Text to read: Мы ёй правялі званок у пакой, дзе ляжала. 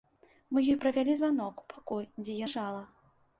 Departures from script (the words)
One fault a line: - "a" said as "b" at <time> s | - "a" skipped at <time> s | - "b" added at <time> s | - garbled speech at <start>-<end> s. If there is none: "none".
none